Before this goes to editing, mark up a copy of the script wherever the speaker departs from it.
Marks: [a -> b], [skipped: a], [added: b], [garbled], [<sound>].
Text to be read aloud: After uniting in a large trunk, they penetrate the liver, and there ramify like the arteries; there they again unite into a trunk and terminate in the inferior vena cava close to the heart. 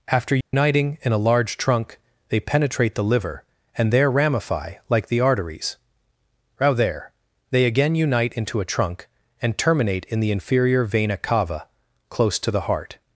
After uniting [dropout] in a large trunk, they penetrate the liver, and there ramify like the arteries; [added: row] there they again unite into a trunk and terminate in the inferior vena cava close to the heart.